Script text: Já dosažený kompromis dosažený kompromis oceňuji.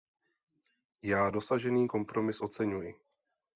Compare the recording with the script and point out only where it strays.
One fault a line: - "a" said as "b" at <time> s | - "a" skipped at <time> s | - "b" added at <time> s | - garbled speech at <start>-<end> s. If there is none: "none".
- "dosažený kompromis" skipped at 2.4 s